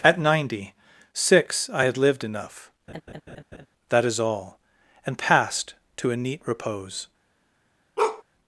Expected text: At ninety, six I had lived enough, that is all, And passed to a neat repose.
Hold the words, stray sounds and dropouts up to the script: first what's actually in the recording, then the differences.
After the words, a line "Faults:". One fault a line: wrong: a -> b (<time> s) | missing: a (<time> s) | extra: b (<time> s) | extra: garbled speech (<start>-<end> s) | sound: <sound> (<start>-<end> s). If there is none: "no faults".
At ninety, six I had lived enough, that is all, And passed to a neat repose.
Faults:
sound: laugh (2.9-3.7 s)
sound: bark (8.0-8.2 s)